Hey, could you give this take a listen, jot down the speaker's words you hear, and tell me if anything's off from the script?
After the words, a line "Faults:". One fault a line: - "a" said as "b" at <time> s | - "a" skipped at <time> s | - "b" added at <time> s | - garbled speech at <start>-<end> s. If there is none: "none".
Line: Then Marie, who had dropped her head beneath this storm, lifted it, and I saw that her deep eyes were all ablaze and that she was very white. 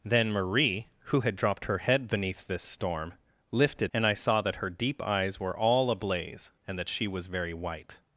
Then Marie, who had dropped her head beneath this storm, lifted and I saw that her deep eyes were all ablaze and that she was very white.
Faults:
- "it" skipped at 3.9 s